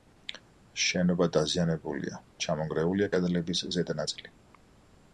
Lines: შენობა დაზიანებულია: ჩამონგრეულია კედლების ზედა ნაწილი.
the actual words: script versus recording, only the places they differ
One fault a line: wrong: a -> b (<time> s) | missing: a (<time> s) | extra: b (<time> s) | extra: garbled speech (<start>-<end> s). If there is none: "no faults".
no faults